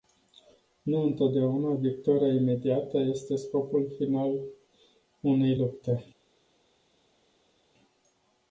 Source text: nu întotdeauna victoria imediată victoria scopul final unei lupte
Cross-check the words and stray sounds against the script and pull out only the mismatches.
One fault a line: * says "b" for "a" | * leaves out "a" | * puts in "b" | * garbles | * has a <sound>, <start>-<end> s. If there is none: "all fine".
* says "este" for "victoria"